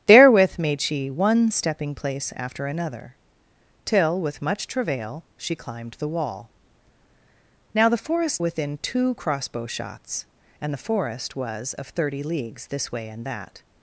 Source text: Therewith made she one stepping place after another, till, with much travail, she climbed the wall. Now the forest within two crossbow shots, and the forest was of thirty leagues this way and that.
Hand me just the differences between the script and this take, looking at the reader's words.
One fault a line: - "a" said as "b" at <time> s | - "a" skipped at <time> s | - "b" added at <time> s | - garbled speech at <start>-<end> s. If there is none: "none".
none